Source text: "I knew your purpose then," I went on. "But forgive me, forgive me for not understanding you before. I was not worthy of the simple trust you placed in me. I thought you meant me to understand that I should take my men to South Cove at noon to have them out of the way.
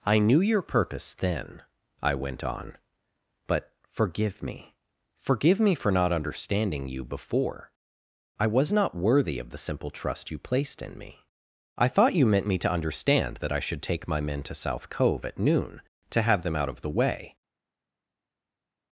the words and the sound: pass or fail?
pass